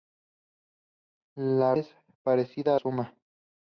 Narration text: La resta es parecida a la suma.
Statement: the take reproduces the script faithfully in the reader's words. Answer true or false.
false